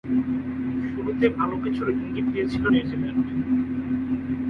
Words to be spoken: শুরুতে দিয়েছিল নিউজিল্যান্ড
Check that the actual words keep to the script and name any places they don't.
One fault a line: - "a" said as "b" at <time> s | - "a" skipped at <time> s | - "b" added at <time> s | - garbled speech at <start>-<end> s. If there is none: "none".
- "ভালো কিছুর ইঙ্গিত" added at 1.4 s